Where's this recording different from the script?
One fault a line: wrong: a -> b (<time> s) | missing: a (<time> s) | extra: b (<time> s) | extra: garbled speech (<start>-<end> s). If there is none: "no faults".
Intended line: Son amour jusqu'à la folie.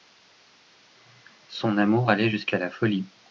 extra: allait (2.1 s)